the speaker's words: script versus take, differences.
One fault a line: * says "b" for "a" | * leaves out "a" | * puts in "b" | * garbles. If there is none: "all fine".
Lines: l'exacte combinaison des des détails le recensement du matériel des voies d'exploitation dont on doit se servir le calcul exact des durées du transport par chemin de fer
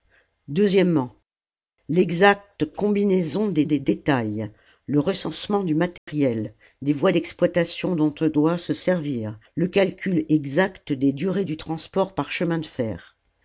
all fine